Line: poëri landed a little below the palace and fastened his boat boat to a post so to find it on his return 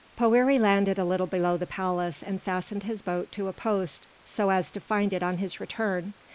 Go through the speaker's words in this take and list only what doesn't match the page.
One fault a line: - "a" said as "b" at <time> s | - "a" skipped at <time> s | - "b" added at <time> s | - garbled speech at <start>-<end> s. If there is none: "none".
- "boat" skipped at 3.3 s
- "as" added at 4.5 s